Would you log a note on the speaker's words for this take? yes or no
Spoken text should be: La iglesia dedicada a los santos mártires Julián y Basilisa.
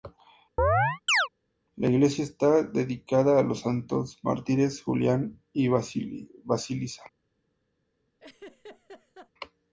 yes